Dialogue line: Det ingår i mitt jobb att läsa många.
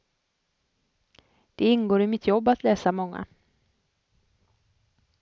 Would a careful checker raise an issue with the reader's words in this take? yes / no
no